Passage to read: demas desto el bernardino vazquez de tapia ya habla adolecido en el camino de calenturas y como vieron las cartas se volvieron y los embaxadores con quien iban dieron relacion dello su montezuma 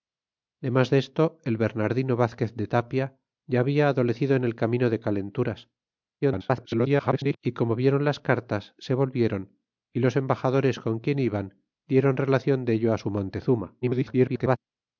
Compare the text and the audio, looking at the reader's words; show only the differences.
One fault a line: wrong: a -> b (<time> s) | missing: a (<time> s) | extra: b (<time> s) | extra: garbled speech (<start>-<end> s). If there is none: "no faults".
extra: garbled speech (6.2-7.4 s)
extra: garbled speech (13.8-14.6 s)